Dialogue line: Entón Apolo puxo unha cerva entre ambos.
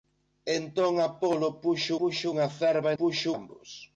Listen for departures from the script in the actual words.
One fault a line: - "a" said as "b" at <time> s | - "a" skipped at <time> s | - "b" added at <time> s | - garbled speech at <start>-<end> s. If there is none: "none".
- "puxo" added at 2.0 s
- "entre" said as "puxo" at 3.0 s